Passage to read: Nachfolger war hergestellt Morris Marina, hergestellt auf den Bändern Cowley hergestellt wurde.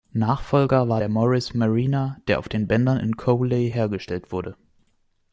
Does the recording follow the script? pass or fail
fail